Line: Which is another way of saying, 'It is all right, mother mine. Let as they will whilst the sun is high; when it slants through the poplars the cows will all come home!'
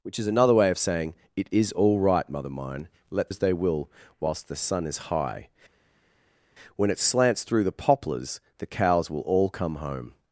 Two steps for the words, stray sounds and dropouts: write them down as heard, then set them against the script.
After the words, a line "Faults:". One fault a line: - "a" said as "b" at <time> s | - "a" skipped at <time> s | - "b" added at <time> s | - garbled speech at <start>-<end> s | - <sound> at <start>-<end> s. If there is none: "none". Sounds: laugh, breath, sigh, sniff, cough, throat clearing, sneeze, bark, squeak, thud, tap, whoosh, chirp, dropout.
Which is another way of saying, 'It is all right, mother mine. Let as they will whilst the sun is high; when it slants through the poplars the cows will all come home!'
Faults:
none